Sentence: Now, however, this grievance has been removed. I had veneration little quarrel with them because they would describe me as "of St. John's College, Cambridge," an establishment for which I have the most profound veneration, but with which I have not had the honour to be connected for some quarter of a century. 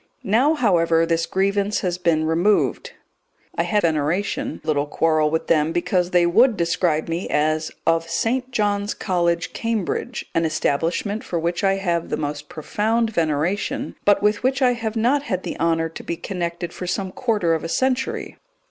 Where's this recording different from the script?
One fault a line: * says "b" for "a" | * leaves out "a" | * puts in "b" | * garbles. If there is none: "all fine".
all fine